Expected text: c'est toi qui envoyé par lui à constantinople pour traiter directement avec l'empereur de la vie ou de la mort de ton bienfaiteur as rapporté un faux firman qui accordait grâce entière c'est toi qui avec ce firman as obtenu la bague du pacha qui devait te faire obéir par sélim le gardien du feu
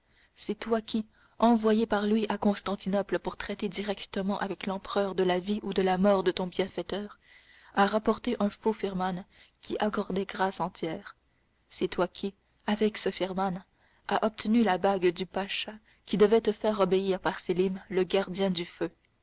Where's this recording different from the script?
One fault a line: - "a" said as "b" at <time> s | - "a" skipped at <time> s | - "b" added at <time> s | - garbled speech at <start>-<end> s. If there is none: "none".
none